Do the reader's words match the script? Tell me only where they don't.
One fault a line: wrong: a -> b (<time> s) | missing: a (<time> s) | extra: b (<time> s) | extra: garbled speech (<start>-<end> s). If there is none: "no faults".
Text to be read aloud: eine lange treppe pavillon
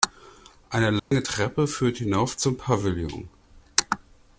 extra: führt hinauf zum (1.7 s)